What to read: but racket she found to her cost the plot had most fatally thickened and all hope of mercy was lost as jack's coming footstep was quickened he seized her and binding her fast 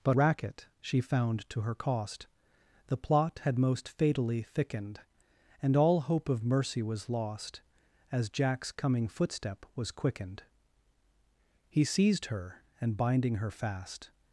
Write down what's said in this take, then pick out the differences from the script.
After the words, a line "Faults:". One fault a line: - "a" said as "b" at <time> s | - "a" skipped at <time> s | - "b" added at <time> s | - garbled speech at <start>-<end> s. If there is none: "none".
but racket she found to her cost the plot had most fatally thickened and all hope of mercy was lost as jack's coming footstep was quickened he seized her and binding her fast
Faults:
none